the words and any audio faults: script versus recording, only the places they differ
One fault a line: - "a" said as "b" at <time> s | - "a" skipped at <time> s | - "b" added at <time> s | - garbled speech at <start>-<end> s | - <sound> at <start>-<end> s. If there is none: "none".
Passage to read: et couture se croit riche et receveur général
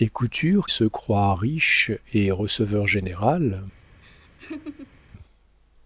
- laugh at 4.0-5.0 s